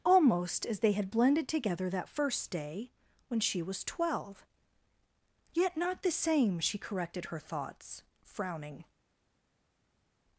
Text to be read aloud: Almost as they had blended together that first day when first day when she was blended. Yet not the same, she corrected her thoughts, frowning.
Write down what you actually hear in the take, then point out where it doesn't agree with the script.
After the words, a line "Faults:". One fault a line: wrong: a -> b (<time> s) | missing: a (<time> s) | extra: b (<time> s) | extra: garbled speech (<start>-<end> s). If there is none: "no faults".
Almost as they had blended together that first day when she was twelve. Yet not the same, she corrected her thoughts, frowning.
Faults:
missing: first day when (3.4 s)
wrong: blended -> twelve (3.8 s)